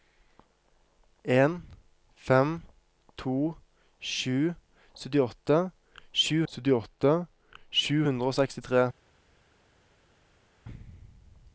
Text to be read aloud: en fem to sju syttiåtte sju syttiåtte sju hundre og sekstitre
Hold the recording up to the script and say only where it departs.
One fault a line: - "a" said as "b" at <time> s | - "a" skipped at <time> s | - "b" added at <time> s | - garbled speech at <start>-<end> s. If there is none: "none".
none